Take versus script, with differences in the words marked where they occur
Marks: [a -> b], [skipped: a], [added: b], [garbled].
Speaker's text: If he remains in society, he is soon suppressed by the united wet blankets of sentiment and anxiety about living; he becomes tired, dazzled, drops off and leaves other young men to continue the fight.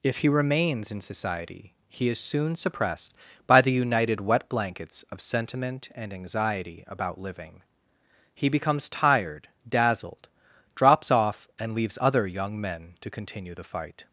If he remains in society, he is soon suppressed by the united wet blankets of sentiment and anxiety about living; he becomes tired, dazzled, drops off and leaves other young men to continue the fight.